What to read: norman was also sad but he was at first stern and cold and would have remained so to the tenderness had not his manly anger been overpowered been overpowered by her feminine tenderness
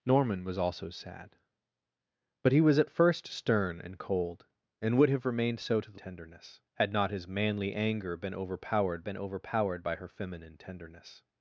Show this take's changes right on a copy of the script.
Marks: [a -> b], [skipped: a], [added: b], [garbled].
norman was also sad but he was at first stern and cold and would have remained so to the tenderness had not his manly anger been overpowered been overpowered by her feminine tenderness